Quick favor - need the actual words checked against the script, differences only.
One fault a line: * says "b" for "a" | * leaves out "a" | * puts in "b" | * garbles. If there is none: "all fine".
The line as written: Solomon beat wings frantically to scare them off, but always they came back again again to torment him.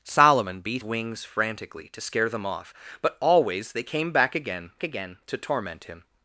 all fine